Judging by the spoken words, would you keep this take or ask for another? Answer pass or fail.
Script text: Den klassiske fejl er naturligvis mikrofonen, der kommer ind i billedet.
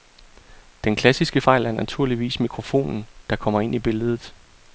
pass